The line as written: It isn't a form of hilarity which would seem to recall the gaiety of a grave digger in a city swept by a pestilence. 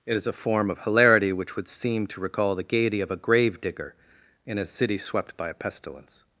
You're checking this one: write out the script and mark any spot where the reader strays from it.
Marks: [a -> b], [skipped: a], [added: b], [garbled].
It [isn't -> is] a form of hilarity which would seem to recall the gaiety of a grave digger in a city swept by a pestilence.